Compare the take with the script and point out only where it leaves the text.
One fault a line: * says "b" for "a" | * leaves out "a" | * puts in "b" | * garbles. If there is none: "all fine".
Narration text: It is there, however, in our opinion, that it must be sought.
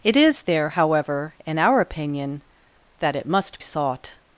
* leaves out "be"